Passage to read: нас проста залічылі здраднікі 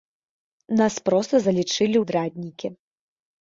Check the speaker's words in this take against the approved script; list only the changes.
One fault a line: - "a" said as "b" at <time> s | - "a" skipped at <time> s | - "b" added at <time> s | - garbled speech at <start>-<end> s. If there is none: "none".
none